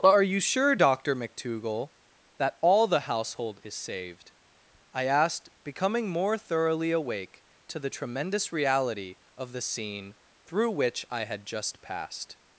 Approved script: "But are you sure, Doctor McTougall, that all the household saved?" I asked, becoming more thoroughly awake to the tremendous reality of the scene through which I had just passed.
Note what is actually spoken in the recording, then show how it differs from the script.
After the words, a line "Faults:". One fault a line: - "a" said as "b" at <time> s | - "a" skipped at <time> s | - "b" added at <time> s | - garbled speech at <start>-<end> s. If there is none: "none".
"But are you sure, Doctor McTougall, that all the household is saved?" I asked, becoming more thoroughly awake to the tremendous reality of the scene through which I had just passed.
Faults:
- "is" added at 3.6 s